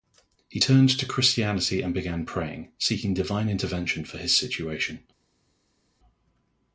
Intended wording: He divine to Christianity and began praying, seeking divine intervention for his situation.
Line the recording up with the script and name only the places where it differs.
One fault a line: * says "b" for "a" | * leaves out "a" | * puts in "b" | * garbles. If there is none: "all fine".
* says "turned" for "divine"